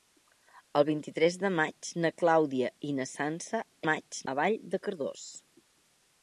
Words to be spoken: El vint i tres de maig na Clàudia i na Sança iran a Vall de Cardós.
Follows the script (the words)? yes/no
no